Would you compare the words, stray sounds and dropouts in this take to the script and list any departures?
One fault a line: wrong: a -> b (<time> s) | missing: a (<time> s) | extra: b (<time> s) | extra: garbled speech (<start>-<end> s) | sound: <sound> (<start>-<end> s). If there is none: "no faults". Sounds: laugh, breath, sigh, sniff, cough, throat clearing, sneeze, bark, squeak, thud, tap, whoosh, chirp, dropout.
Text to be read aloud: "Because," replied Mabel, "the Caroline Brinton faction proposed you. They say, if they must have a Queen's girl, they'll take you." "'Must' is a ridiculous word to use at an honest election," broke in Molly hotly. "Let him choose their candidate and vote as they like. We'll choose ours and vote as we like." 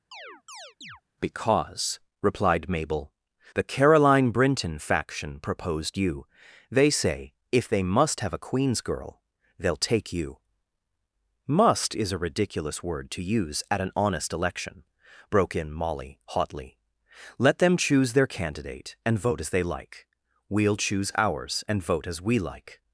sound: chirp (0.1-1.0 s)
wrong: him -> them (17.6 s)